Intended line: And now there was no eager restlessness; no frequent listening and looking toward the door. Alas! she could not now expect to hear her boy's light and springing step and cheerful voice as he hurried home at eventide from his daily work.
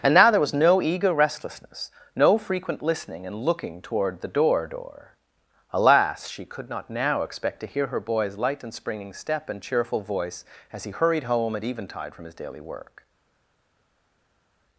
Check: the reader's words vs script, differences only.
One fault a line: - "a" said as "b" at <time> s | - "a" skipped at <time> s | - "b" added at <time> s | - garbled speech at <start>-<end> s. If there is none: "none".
- "door" added at 4.7 s